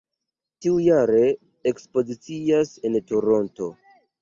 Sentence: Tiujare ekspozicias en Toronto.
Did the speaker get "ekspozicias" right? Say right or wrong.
right